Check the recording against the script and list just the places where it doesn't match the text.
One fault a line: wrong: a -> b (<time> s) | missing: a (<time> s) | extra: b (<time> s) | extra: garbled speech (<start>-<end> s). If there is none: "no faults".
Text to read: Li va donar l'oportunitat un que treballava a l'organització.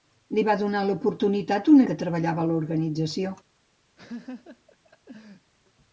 no faults